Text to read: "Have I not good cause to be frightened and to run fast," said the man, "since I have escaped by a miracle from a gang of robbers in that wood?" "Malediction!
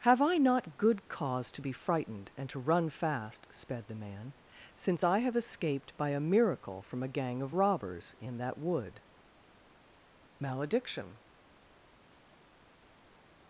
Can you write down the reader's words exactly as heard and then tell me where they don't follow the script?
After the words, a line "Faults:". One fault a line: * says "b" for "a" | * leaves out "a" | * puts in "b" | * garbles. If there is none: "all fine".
"Have I not good cause to be frightened and to run fast," sped the man, "since I have escaped by a miracle from a gang of robbers in that wood?" "Malediction!
Faults:
* says "sped" for "said"